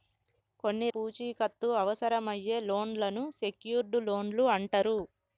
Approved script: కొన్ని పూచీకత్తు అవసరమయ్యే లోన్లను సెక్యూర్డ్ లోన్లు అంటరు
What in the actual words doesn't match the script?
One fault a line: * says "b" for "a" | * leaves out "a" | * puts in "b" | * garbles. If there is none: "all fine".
all fine